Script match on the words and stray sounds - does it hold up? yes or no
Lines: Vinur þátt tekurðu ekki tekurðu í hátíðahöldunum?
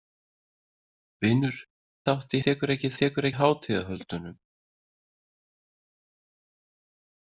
yes